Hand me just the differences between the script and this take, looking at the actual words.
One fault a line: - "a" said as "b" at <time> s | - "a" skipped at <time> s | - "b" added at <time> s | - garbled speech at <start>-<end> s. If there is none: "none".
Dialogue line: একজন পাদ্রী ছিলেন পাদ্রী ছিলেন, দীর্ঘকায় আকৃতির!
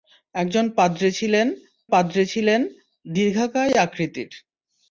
none